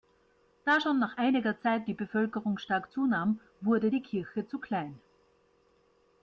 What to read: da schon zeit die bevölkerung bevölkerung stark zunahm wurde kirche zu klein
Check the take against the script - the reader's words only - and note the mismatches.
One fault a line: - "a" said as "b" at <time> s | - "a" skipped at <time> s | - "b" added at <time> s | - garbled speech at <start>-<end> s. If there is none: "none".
- "nach einiger" added at 1.0 s
- "bevölkerung" skipped at 2.6 s
- "die" added at 3.9 s